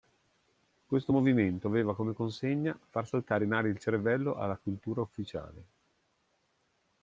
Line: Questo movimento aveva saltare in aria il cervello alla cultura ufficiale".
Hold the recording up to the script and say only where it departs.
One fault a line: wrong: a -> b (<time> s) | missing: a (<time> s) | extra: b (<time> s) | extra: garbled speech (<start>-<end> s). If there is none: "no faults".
extra: come consegna far (1.9 s)